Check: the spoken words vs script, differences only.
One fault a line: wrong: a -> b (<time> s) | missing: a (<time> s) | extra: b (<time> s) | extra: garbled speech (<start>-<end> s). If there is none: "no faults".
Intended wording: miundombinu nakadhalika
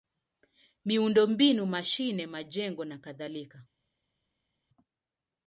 extra: mashine majengo (1.6 s)